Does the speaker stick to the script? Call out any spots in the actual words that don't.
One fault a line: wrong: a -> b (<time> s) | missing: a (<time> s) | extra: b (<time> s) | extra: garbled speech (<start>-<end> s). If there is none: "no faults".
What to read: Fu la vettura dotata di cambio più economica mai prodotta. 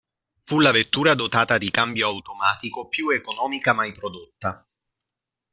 extra: automatico (2.1 s)